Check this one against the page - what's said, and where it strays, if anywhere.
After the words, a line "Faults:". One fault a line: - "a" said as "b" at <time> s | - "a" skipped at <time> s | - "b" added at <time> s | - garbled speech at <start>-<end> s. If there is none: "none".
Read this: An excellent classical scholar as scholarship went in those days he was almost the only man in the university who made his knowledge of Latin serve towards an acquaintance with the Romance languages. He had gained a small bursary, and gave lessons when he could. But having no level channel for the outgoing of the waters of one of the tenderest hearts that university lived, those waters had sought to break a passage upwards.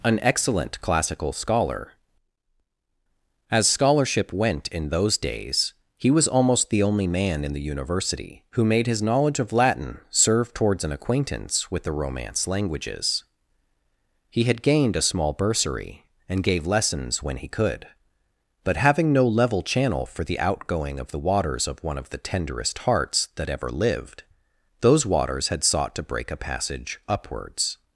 An excellent classical scholar as scholarship went in those days he was almost the only man in the university who made his knowledge of Latin serve towards an acquaintance with the Romance languages. He had gained a small bursary, and gave lessons when he could. But having no level channel for the outgoing of the waters of one of the tenderest hearts that ever lived, those waters had sought to break a passage upwards.
Faults:
- "university" said as "ever" at 23.5 s